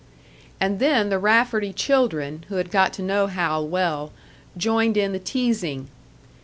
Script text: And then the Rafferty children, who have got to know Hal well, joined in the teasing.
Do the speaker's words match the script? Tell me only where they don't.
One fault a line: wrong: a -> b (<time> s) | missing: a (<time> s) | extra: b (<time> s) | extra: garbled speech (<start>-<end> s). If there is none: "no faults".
wrong: have -> had (2.5 s)